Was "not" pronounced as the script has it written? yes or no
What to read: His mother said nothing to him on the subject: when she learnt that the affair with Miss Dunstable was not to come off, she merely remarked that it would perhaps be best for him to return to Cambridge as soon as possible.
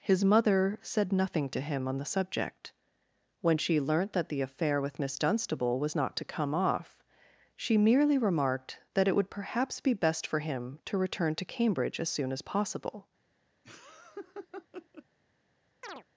yes